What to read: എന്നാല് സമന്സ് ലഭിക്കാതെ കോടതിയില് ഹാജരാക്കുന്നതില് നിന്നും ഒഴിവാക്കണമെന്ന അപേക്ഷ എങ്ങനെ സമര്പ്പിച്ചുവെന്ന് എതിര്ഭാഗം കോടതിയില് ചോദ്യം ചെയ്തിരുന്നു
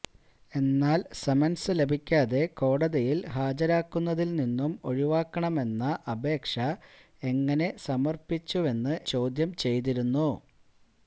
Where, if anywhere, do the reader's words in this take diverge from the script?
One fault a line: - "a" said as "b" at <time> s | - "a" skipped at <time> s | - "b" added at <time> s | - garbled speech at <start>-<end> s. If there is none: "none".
- "എതിര്ഭാഗം കോടതിയില്" skipped at 8.9 s